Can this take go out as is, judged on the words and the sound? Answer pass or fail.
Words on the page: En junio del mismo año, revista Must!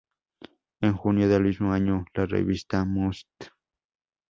fail